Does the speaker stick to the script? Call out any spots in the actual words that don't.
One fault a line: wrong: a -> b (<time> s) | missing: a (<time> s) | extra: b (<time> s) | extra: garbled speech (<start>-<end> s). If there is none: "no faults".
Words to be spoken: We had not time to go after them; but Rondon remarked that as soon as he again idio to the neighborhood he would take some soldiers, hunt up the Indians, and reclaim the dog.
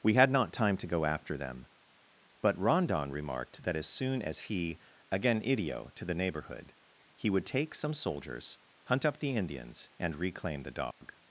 no faults